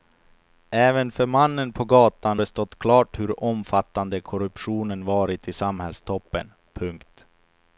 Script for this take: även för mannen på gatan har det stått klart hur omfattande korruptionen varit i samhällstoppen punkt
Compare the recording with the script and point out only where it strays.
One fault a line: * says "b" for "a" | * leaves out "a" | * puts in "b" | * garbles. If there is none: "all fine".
* leaves out "har"